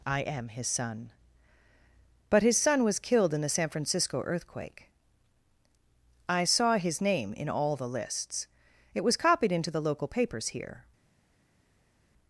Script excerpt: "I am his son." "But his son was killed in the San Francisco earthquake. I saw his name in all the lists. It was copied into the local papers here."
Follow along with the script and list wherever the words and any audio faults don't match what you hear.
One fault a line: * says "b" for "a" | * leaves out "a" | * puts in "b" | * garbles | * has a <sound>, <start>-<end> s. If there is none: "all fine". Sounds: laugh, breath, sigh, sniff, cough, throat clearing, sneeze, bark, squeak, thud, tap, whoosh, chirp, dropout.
all fine